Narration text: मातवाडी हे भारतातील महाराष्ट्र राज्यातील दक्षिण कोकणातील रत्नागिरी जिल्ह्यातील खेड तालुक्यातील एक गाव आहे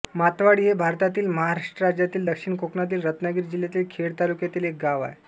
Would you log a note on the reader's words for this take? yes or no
no